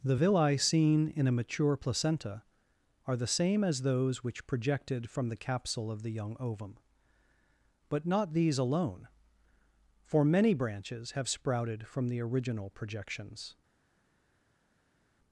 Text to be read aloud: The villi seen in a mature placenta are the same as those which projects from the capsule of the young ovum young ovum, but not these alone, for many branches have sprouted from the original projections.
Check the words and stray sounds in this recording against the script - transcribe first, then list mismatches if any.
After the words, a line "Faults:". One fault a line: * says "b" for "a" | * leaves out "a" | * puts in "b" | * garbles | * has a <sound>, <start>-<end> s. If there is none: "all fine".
The villi seen in a mature placenta are the same as those which projected from the capsule of the young ovum, but not these alone, for many branches have sprouted from the original projections.
Faults:
* says "projected" for "projects"
* leaves out "young ovum"